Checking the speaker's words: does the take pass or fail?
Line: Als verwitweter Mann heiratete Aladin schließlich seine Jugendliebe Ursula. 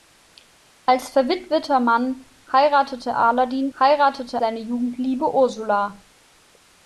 fail